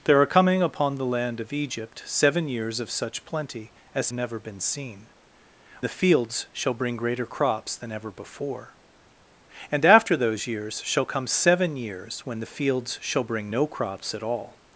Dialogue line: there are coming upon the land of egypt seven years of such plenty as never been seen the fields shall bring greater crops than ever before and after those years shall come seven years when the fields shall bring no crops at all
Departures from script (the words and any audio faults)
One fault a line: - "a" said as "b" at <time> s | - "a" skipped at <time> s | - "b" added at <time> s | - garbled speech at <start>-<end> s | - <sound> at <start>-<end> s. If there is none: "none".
none